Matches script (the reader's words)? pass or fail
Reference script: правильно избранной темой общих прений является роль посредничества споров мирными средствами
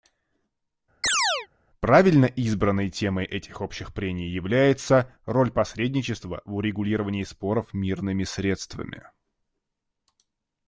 fail